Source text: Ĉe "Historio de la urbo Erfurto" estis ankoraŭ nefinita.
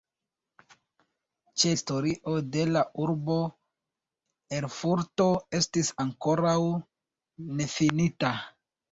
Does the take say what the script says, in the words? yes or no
yes